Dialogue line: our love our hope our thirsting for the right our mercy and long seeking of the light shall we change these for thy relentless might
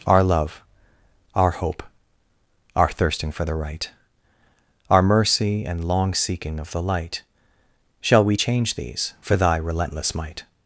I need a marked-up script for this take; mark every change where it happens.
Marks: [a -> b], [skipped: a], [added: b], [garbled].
our love our hope our thirsting for the right our mercy and long seeking of the light shall we change these for thy relentless might